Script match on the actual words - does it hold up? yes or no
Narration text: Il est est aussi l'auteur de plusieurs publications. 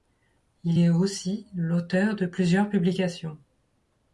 no